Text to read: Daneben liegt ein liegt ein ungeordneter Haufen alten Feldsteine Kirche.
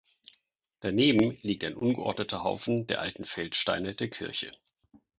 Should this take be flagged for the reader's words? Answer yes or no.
yes